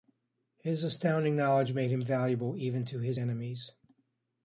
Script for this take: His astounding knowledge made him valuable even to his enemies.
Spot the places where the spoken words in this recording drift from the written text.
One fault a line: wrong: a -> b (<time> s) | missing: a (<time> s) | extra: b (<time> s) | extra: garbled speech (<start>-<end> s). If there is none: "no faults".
no faults